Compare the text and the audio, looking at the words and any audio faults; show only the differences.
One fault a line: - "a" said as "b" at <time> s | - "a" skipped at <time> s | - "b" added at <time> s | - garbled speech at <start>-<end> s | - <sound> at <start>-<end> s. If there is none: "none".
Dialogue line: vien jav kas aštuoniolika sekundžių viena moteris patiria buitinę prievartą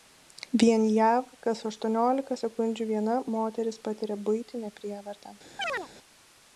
- chirp at 5.6-5.9 s